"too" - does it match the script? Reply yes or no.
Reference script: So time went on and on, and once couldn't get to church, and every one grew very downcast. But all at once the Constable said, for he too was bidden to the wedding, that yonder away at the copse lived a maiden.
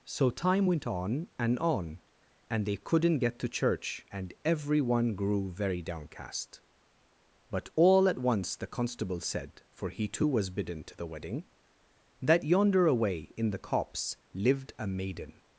yes